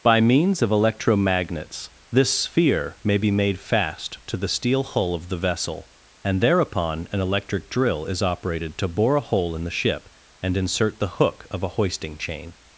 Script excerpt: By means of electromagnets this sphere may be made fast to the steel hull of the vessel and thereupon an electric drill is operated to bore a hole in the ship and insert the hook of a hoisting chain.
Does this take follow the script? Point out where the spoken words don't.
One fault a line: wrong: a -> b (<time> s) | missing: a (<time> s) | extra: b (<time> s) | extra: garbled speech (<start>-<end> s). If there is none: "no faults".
no faults